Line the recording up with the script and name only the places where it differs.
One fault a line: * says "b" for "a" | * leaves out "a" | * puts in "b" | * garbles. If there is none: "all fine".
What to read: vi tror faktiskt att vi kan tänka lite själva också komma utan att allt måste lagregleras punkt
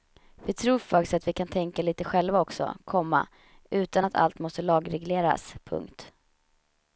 all fine